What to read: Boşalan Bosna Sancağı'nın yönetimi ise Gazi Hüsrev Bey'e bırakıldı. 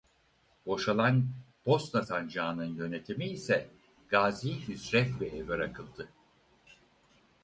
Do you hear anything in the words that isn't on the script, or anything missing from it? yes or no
no